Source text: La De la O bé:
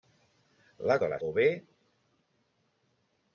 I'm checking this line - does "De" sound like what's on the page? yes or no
yes